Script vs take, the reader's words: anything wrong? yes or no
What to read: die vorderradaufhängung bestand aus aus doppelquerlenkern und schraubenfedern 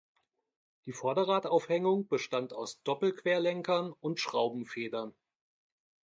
yes